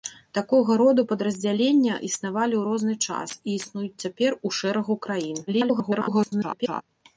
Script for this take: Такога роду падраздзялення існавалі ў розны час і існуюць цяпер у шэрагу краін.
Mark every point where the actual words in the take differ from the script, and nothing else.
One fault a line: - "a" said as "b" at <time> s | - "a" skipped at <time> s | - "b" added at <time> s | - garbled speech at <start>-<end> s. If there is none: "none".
- garbled speech at 5.5-6.8 s